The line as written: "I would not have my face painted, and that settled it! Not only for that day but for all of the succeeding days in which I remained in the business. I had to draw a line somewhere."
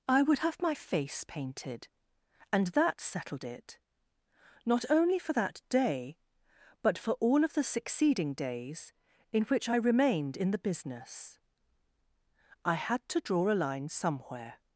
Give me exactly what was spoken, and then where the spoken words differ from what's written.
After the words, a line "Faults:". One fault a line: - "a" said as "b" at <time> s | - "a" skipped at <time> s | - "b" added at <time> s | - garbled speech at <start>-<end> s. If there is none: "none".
"I would have my face painted, and that settled it! Not only for that day but for all of the succeeding days in which I remained in the business. I had to draw a line somewhere."
Faults:
- "not" skipped at 0.4 s